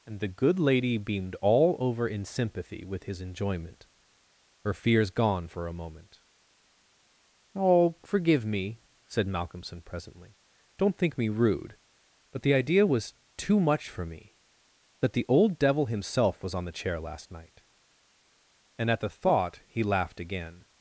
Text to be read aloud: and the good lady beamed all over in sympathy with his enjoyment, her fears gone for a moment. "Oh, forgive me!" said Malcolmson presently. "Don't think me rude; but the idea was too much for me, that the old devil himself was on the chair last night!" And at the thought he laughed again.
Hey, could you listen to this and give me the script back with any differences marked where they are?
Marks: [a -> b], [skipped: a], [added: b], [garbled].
and the good lady beamed all over in sympathy with his enjoyment, her fears gone for a moment. "Oh, forgive me!" said Malcolmson presently. "Don't think me rude; but the idea was too much for me, that the old devil himself was on the chair last night!" And at the thought he laughed again.